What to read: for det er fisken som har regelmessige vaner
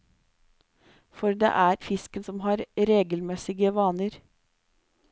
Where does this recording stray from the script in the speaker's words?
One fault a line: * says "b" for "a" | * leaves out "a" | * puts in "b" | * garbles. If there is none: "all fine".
all fine